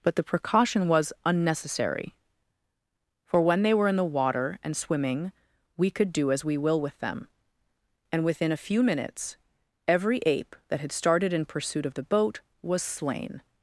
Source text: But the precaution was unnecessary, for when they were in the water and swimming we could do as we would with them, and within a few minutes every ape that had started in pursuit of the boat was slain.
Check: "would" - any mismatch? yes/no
yes